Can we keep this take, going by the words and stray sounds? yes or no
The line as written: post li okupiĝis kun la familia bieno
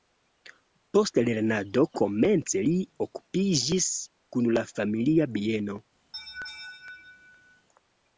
no